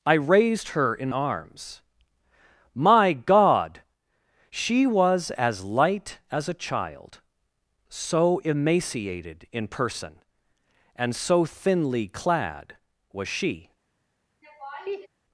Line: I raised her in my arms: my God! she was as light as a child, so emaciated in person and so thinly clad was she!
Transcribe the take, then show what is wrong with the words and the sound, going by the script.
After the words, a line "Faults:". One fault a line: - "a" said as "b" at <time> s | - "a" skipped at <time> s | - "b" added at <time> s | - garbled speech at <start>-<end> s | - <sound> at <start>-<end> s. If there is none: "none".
I raised her in arms: my God! she was as light as a child, so emaciated in person and so thinly clad was she!
Faults:
- "my" skipped at 1.1 s
- laugh at 14.4-15.1 s